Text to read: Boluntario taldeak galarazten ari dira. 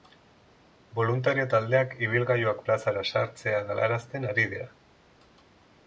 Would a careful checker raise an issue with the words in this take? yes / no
yes